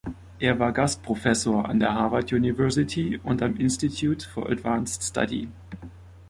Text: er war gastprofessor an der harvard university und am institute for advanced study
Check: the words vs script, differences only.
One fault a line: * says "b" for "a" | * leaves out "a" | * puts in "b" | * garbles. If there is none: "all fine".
all fine